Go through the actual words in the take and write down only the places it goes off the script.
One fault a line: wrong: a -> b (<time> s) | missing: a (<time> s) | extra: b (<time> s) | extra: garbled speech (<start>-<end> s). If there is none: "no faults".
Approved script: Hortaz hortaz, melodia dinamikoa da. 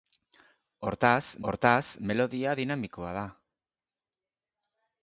no faults